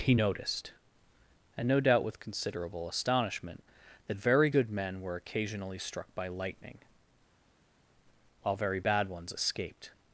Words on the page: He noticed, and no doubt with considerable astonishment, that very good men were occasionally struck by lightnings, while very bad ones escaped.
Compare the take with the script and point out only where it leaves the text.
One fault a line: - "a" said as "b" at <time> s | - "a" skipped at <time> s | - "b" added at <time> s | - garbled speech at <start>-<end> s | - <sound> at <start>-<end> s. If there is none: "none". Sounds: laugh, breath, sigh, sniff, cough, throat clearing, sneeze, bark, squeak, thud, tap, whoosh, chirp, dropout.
- "lightnings" said as "lightning" at 6.3 s